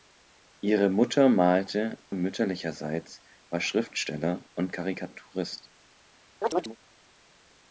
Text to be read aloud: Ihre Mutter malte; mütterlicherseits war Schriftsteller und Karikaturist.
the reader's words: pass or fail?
pass